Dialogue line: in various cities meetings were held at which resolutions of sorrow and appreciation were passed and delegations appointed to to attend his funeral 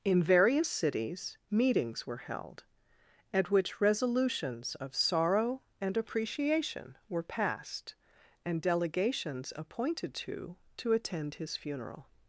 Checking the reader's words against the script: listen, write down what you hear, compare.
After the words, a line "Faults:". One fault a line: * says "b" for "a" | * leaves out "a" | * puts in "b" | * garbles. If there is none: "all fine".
in various cities meetings were held at which resolutions of sorrow and appreciation were passed and delegations appointed to to attend his funeral
Faults:
all fine